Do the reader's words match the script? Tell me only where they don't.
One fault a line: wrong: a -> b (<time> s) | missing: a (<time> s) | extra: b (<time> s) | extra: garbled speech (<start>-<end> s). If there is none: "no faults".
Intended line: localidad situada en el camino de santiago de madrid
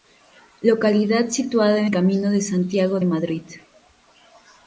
missing: el (1.9 s)
missing: de (3.0 s)